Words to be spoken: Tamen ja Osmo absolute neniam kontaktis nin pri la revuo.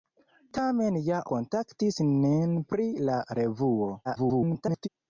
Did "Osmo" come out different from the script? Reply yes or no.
yes